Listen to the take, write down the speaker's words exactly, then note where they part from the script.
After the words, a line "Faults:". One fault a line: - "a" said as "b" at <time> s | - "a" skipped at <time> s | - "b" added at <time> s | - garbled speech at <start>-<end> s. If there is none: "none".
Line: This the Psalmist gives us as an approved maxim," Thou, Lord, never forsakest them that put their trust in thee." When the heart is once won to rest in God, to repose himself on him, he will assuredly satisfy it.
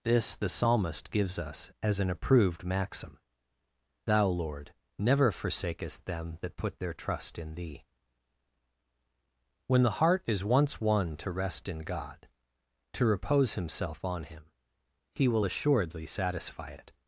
This the Psalmist gives us as an approved maxim," Thou, Lord, never forsakest them that put their trust in thee." When the heart is once won to rest in God, to repose himself on him, he will assuredly satisfy it.
Faults:
none